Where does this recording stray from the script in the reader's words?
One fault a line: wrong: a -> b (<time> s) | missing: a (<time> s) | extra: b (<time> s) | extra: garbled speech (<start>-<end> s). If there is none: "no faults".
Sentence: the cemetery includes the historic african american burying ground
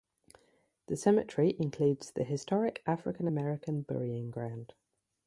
no faults